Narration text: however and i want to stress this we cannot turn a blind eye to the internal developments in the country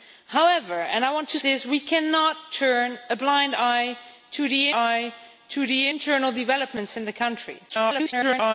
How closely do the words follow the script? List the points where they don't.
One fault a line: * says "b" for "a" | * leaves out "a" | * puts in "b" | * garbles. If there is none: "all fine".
* leaves out "stress"
* puts in "eye to the"
* garbles